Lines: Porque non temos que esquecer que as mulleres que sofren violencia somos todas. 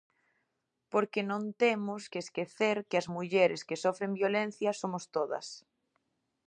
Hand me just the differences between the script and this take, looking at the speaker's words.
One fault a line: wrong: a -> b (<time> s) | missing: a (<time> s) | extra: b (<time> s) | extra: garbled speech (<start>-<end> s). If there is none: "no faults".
no faults